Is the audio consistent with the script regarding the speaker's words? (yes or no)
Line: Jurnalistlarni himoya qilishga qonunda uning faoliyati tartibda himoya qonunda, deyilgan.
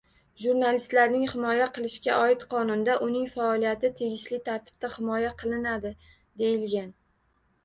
no